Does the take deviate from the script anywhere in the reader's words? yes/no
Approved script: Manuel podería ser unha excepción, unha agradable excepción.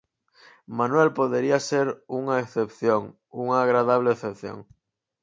no